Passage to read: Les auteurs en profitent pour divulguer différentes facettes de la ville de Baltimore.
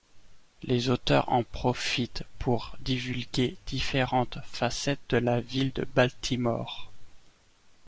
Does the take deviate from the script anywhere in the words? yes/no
no